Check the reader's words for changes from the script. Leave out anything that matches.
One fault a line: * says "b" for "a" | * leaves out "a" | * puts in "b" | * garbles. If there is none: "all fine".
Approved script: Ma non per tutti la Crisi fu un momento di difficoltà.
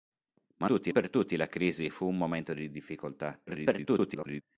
* says "tutti" for "non"
* garbles